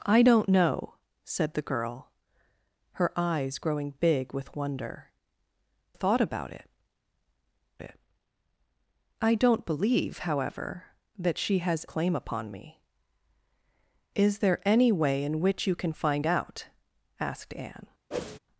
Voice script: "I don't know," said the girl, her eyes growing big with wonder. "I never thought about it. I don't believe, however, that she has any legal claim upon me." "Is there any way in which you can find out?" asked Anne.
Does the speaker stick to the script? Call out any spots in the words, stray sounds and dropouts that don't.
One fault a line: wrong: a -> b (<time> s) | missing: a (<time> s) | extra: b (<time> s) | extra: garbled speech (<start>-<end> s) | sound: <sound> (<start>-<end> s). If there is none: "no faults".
missing: I never (5.1 s)
extra: it (7.8 s)
missing: any legal (11.9 s)
sound: whoosh (18.1-18.4 s)